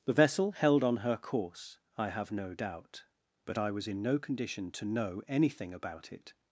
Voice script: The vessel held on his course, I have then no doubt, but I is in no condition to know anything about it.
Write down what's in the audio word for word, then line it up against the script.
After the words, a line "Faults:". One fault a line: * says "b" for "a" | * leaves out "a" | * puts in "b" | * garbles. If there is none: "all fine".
The vessel held on her course, I have no doubt, but I was in no condition to know anything about it.
Faults:
* says "her" for "his"
* leaves out "then"
* says "was" for "is"